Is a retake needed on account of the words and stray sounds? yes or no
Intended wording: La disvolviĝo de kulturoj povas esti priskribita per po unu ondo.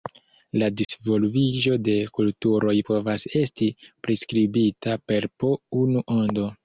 yes